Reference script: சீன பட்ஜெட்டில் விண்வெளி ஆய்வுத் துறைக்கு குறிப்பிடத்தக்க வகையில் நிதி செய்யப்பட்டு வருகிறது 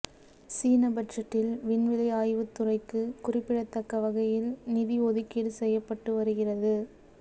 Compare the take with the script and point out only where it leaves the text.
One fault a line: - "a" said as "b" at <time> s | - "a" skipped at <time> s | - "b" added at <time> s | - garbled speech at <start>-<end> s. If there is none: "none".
- "ஒதுக்கீடு" added at 5.1 s